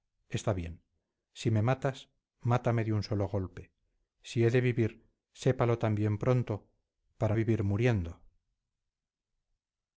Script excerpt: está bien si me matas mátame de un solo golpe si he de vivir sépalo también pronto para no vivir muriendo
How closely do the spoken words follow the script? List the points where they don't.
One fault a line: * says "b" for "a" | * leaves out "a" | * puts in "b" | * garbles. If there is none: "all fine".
* leaves out "no"